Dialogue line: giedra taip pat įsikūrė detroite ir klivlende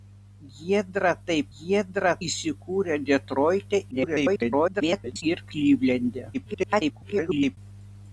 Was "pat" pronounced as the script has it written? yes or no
no